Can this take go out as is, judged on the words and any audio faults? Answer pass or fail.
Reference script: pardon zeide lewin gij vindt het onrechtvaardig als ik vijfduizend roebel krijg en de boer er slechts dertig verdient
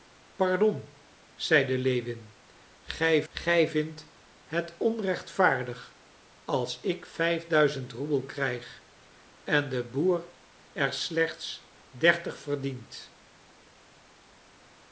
fail